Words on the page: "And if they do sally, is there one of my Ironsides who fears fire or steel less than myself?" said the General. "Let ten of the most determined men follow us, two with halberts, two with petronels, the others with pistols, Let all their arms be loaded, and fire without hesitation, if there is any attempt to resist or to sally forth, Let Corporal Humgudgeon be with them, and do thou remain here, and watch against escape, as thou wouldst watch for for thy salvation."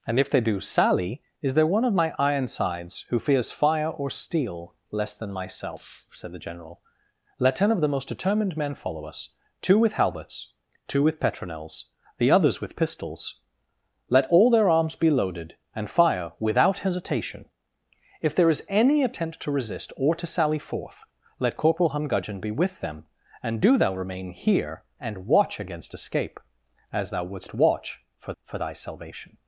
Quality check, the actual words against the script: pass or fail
pass